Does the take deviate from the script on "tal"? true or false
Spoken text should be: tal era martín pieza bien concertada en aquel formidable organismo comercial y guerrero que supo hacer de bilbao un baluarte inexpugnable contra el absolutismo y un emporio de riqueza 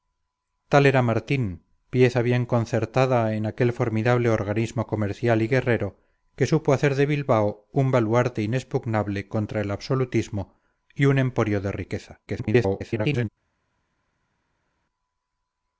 false